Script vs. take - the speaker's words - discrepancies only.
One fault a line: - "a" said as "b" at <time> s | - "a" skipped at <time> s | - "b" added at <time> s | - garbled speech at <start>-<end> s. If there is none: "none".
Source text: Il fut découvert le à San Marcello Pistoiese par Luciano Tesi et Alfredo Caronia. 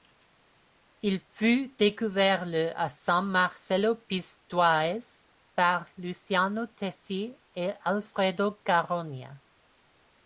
none